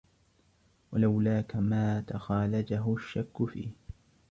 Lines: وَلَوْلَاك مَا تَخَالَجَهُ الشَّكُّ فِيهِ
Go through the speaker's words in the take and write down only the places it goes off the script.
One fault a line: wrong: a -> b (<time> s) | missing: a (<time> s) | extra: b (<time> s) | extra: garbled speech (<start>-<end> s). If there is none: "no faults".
no faults